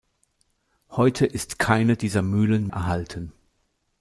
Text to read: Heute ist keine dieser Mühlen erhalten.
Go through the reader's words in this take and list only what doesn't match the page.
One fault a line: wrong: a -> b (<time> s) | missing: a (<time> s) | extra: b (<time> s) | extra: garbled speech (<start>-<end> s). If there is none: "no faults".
no faults